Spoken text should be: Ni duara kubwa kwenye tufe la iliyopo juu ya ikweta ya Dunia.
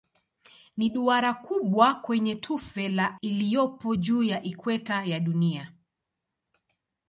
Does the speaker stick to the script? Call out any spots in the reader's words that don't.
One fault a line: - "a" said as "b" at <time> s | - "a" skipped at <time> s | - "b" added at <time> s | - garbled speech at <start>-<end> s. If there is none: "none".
none